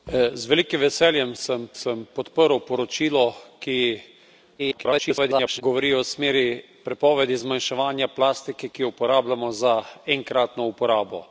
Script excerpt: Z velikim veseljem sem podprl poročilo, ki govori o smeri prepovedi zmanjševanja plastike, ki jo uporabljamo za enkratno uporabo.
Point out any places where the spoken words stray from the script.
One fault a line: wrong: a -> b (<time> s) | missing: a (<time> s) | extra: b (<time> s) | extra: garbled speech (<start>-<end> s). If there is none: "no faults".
extra: sem (1.7 s)
extra: garbled speech (4.6-5.6 s)